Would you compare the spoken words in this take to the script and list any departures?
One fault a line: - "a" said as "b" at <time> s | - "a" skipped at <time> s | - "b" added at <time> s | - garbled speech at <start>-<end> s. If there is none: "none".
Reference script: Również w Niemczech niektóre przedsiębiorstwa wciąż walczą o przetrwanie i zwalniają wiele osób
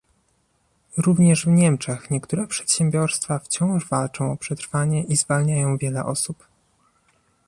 none